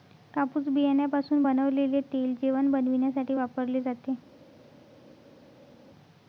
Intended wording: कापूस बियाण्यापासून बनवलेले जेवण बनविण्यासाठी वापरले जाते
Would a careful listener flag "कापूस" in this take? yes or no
no